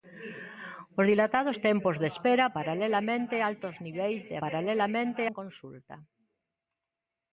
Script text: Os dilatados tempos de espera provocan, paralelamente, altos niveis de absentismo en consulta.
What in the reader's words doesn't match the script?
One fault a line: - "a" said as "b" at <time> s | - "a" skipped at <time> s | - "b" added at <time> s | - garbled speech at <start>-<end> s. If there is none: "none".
- "provocan" skipped at 2.5 s
- "absentismo" said as "paralelamente" at 4.4 s